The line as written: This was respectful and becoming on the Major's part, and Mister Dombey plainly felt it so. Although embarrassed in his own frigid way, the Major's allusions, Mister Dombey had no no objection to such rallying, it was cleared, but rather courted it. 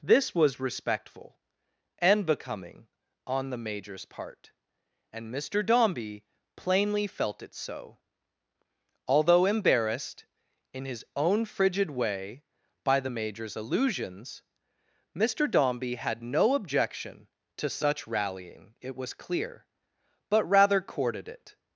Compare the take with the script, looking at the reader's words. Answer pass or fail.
fail